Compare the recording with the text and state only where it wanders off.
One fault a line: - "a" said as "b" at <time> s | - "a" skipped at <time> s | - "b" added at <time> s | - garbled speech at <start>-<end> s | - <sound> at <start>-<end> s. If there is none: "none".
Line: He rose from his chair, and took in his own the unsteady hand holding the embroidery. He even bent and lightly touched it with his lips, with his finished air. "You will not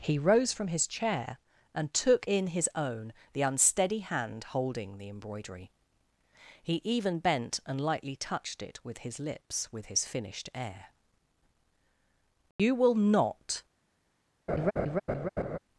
- dropout at 12.5-12.6 s
- laugh at 14.5-15.6 s